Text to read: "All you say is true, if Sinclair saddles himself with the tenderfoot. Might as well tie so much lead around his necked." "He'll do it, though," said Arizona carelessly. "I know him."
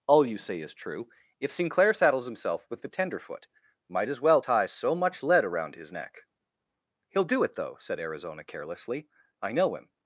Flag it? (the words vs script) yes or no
yes